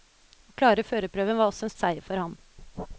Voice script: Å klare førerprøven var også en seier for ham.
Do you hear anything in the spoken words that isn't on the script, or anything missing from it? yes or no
no